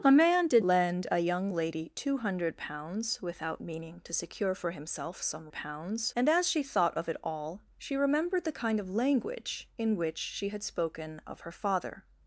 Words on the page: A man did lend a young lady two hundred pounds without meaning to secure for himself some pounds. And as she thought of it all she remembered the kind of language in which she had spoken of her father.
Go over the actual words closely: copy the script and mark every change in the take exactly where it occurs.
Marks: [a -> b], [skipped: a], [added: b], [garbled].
A man did lend a young lady two hundred pounds without meaning to secure for himself some pounds. And as she thought of it all she remembered the kind of language in which she had spoken of her father.